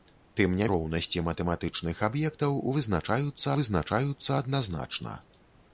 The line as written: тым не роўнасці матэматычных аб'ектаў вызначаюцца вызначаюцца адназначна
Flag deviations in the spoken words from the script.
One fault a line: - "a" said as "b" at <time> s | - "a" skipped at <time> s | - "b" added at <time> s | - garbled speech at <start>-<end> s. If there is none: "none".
none